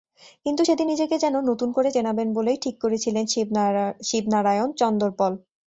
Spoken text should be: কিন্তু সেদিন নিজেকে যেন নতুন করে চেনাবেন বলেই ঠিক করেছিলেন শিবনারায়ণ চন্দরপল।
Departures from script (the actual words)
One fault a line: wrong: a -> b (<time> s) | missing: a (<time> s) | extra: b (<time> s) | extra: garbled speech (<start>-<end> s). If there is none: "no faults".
no faults